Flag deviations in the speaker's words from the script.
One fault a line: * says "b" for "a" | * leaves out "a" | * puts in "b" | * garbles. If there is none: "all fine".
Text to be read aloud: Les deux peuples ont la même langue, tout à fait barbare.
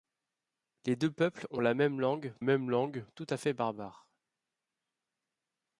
* puts in "même langue"